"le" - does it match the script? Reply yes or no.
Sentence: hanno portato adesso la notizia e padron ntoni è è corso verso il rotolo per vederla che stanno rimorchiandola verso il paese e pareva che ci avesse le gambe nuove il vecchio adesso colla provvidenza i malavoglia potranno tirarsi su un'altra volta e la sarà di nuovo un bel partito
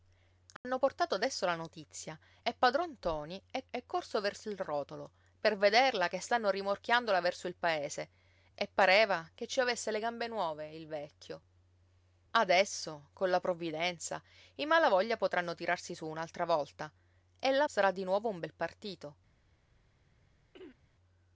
yes